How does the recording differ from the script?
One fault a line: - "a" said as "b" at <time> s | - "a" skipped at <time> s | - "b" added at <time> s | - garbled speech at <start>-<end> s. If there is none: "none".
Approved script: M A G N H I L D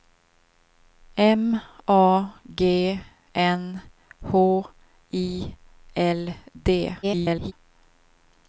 - garbled speech at 7.0-7.5 s